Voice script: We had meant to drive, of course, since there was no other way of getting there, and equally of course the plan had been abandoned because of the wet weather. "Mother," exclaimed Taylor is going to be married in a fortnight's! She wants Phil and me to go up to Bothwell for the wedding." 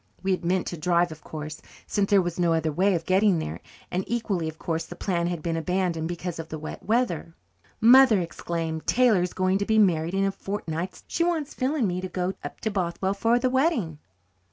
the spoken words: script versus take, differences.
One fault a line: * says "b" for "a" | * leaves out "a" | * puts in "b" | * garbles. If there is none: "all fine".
all fine